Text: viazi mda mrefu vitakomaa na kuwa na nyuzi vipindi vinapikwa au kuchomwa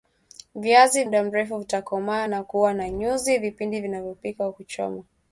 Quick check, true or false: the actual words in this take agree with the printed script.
true